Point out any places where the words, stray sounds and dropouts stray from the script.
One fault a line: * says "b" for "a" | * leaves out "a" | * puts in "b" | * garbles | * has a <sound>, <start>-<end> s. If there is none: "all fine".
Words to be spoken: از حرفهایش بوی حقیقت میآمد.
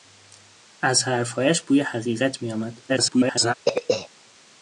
* garbles
* has a throat clearing, 3.7-4.1 s